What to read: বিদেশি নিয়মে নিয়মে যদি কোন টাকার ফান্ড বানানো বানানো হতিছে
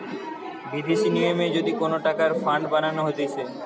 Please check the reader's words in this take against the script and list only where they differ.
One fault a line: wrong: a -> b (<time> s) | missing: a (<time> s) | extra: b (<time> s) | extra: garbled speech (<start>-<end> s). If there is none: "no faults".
missing: নিয়মে (1.4 s)
missing: বানানো (3.0 s)